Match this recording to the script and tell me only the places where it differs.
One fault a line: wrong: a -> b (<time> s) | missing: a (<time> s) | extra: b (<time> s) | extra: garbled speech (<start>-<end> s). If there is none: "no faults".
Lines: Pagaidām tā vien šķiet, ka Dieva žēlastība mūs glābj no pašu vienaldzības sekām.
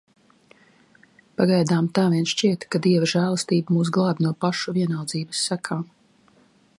no faults